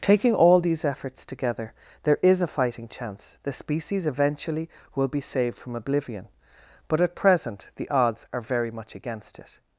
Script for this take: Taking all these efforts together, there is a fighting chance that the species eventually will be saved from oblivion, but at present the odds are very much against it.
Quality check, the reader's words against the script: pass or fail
fail